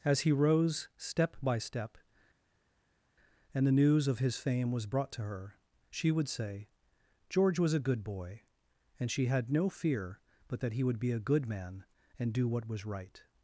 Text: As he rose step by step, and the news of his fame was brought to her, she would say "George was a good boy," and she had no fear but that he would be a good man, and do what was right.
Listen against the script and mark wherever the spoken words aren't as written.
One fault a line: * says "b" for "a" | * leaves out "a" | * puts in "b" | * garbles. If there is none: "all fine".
all fine